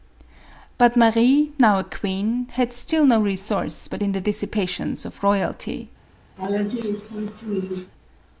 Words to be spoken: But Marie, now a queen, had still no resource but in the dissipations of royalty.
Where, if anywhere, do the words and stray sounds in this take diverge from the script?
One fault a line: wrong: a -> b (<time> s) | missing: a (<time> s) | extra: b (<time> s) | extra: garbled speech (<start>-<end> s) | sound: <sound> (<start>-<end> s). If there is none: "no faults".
sound: laugh (6.4-7.9 s)